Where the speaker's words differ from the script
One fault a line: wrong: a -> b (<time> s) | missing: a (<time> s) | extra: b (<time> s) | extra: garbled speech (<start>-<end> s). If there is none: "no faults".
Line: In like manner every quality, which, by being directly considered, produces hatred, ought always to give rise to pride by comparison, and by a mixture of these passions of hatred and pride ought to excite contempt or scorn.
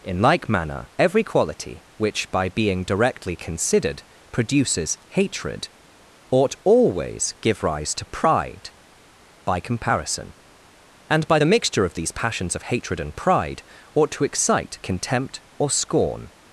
missing: to (7.3 s)
wrong: a -> the (11.4 s)